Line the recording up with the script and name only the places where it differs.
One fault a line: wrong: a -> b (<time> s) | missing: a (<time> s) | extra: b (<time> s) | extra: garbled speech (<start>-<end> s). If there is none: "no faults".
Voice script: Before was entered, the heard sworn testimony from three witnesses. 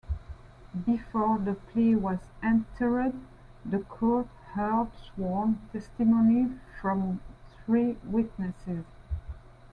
extra: the plea (1.4 s)
extra: court (3.8 s)